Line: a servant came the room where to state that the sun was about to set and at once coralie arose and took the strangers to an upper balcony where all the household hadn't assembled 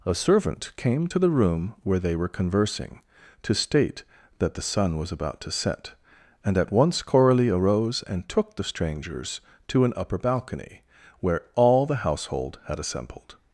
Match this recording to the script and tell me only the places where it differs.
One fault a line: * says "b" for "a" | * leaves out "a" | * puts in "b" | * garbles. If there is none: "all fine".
* puts in "to"
* puts in "they were conversing"
* says "had" for "hadn't"